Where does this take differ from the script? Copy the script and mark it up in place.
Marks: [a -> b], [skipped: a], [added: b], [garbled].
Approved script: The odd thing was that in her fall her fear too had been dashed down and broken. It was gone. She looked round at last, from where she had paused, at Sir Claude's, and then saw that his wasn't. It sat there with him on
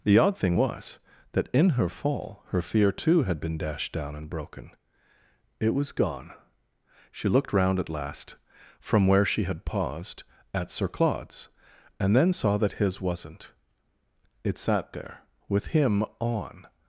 The odd thing was that in her fall her fear too had been dashed down and broken. It was gone. She looked round at last, from where she had paused, at Sir Claude's, and then saw that his wasn't. It sat there with him on